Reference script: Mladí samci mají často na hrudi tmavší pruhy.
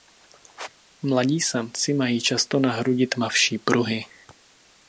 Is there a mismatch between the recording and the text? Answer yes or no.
no